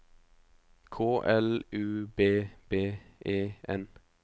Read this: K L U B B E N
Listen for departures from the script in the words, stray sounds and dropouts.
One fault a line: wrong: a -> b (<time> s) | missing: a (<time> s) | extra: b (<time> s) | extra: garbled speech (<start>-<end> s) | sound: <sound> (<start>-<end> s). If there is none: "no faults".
no faults